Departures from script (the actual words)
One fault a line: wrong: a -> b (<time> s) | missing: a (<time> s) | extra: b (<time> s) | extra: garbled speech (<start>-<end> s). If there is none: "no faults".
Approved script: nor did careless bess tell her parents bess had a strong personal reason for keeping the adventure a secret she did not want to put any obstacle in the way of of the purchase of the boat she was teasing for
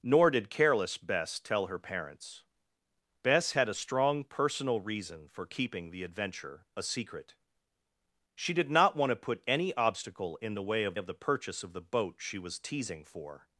no faults